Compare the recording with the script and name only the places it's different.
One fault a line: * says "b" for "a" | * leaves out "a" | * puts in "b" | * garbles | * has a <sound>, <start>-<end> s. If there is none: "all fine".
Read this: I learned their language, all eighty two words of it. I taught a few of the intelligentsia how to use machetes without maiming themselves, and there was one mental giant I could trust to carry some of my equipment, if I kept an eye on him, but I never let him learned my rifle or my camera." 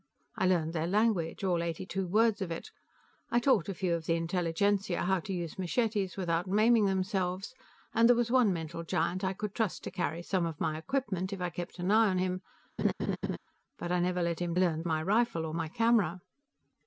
* has a laugh, 12.8-13.4 s